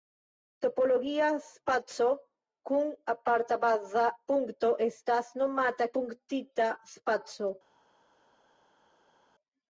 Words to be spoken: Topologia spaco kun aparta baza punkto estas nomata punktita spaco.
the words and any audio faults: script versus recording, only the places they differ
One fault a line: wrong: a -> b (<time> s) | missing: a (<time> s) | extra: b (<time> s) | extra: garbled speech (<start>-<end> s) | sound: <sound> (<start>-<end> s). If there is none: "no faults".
no faults